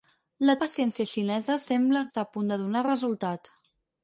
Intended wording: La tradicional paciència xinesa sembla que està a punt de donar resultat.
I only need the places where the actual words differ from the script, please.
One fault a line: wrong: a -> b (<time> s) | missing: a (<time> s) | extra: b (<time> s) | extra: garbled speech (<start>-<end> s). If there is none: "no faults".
missing: tradicional (0.5 s)
missing: que (2.0 s)